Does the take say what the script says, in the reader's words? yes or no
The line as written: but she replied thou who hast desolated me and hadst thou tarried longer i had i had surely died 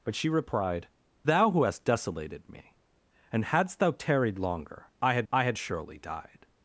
yes